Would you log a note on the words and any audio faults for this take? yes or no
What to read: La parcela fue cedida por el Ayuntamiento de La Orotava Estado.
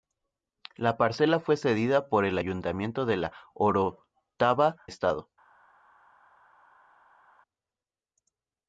no